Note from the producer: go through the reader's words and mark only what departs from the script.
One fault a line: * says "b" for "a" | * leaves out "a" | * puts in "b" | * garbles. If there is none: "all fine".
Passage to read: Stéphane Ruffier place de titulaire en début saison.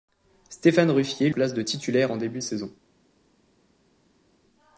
all fine